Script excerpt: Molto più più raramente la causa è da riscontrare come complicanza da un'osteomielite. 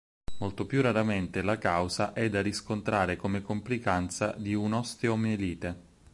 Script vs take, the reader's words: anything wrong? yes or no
yes